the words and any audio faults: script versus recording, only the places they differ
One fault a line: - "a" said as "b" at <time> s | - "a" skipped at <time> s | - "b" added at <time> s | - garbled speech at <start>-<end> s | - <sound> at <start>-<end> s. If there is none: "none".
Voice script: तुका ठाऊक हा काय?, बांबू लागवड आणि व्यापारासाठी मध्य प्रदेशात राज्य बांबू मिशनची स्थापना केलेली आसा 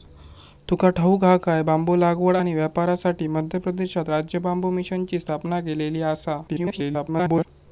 - garbled speech at 6.5-7.5 s